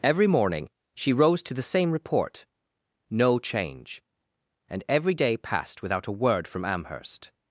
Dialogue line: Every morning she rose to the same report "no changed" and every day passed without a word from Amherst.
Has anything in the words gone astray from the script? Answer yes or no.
yes